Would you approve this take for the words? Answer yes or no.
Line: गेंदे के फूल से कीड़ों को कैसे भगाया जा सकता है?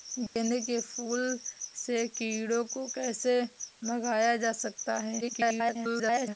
no